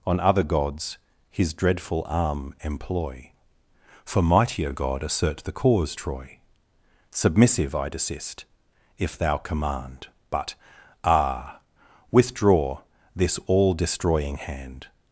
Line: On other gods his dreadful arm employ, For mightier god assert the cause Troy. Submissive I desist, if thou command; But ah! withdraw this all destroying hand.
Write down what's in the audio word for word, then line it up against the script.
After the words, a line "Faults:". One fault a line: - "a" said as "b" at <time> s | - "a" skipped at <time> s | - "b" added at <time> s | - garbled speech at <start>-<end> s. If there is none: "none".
On other gods his dreadful arm employ, For mightier god assert the cause Troy. Submissive I desist, if thou command; But ah! withdraw this all destroying hand.
Faults:
none